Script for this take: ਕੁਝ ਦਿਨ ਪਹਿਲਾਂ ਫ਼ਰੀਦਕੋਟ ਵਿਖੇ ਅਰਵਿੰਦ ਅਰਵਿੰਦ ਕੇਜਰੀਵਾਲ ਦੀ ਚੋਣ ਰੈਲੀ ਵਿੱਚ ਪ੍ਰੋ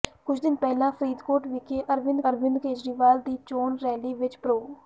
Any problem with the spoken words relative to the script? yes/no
no